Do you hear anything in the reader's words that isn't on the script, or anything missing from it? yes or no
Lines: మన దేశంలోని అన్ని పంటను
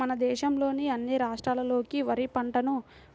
yes